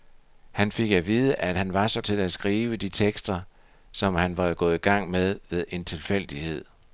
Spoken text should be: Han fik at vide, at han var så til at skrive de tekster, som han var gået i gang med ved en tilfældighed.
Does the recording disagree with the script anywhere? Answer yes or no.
no